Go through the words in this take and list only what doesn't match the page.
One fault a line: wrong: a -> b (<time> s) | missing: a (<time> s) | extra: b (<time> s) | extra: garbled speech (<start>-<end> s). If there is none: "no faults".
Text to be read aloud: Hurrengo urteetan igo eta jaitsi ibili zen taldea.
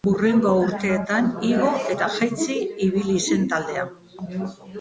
no faults